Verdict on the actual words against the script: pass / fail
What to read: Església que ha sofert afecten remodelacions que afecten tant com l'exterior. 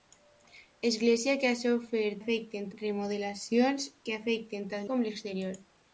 pass